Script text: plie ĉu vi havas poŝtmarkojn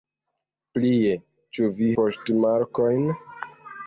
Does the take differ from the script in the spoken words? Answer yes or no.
yes